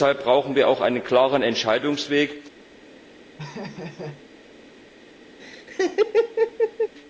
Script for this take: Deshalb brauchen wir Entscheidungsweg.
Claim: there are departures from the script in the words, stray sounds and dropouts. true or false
true